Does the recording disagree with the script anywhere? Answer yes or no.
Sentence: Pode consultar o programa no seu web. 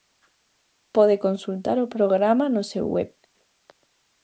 no